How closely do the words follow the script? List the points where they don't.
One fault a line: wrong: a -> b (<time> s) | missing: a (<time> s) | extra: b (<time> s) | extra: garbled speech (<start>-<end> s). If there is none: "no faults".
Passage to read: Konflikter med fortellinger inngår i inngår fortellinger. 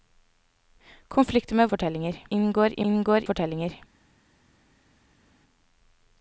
no faults